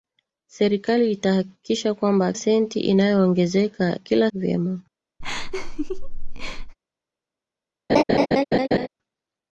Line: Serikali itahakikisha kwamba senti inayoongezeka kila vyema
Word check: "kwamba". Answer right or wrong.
right